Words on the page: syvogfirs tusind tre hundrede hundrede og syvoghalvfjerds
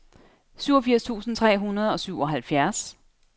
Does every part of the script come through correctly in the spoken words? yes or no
no